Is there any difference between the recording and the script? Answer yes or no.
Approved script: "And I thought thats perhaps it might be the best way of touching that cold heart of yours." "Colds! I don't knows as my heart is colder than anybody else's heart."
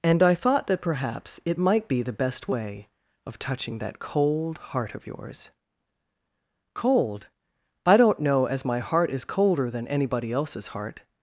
yes